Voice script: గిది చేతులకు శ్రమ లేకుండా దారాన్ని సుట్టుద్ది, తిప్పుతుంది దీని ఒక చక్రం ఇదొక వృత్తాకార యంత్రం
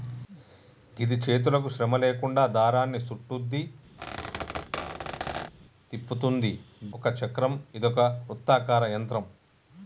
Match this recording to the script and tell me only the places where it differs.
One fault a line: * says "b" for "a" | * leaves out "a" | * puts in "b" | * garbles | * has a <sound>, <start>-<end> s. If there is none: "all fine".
* has a squeak, 4.0-5.5 s
* leaves out "దీని"